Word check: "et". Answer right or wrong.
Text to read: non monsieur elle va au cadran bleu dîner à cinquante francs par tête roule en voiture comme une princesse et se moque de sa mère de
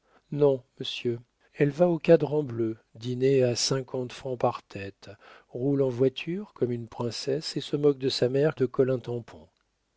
right